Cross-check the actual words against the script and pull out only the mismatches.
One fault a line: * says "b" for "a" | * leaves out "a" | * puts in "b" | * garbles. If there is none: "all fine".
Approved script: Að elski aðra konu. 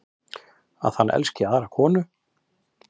* puts in "hann"